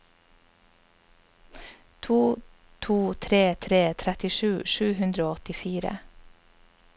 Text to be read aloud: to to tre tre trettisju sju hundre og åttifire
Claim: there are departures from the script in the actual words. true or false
false